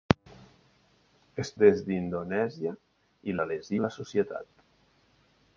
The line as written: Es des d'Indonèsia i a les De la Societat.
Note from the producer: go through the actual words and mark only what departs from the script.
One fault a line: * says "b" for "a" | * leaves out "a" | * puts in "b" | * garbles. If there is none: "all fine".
all fine